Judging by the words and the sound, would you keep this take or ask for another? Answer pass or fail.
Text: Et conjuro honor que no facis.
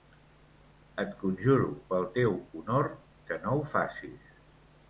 fail